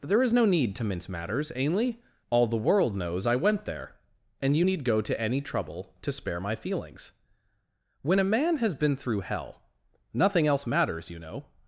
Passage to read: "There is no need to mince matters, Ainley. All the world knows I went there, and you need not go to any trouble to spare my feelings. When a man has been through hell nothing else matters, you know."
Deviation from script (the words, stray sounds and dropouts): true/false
true